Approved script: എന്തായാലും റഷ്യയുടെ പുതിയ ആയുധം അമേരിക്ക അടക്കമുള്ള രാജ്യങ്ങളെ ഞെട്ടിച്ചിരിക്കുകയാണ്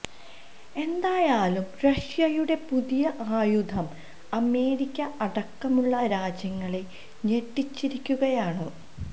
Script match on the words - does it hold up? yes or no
yes